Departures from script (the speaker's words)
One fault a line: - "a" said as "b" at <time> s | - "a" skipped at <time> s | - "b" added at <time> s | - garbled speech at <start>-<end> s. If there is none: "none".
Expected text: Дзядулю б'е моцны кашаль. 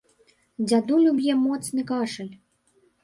none